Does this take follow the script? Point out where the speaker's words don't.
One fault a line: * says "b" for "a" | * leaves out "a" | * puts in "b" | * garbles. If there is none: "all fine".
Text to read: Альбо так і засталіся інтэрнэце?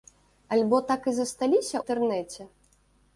all fine